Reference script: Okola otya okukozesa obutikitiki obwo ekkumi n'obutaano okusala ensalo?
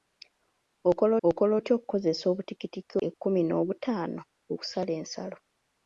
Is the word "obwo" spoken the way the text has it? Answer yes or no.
no